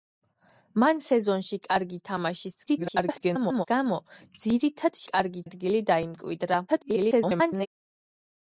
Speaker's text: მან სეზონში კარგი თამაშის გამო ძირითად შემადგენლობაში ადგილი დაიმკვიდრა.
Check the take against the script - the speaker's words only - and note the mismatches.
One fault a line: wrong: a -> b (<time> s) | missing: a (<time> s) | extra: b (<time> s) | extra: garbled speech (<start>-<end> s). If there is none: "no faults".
extra: garbled speech (2.7-3.7 s)
wrong: შემადგენლობაში -> კარგი (5.1 s)
extra: garbled speech (6.7-7.7 s)